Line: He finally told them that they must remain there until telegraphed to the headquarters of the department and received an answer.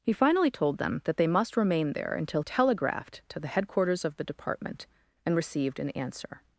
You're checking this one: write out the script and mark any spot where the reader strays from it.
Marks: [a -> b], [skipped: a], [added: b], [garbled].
He finally told them that they must remain there until telegraphed to the headquarters of the department and received an answer.